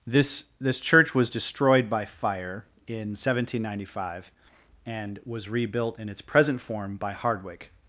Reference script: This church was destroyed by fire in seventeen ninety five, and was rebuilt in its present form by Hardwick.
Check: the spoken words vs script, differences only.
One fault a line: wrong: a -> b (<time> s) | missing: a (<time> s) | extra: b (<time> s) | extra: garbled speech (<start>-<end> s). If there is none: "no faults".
extra: this (0.6 s)